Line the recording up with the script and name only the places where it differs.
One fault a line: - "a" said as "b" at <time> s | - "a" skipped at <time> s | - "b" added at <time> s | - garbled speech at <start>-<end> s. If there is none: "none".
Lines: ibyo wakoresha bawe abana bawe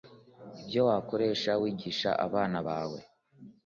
- "bawe" said as "wigisha" at 1.6 s